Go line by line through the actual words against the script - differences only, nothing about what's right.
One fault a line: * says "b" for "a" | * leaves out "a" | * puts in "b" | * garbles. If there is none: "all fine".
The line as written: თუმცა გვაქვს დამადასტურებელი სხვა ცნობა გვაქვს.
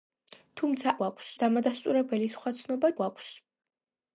all fine